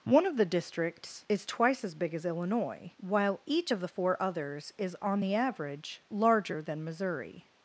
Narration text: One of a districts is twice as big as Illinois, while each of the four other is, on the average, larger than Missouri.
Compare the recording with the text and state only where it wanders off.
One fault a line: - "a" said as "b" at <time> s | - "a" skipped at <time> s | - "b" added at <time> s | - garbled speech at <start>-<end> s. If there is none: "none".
- "a" said as "the" at 0.3 s
- "other" said as "others" at 4.2 s